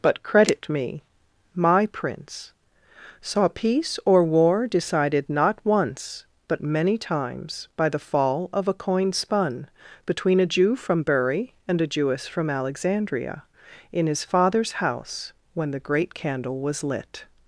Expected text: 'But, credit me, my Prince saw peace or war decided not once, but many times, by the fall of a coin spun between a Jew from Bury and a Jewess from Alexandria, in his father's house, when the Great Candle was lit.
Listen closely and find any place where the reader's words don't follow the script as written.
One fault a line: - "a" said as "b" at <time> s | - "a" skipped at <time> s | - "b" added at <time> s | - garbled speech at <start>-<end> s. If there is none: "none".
none